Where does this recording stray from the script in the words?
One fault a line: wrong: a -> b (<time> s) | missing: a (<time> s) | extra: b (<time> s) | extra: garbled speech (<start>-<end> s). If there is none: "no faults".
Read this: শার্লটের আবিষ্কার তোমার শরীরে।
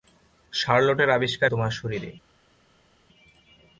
no faults